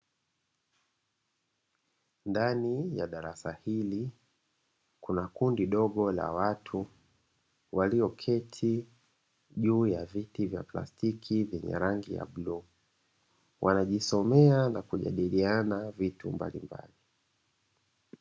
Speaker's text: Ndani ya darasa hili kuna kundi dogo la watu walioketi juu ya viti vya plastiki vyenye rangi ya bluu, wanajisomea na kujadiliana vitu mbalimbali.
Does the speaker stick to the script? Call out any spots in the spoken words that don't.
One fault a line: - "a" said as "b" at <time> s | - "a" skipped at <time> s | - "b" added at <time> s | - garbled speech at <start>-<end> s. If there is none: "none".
none